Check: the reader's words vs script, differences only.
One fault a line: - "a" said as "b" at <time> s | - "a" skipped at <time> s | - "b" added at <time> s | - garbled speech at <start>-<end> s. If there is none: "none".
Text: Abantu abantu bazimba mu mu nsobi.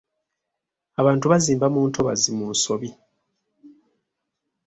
- "abantu" skipped at 1.2 s
- "ntobazi" added at 1.9 s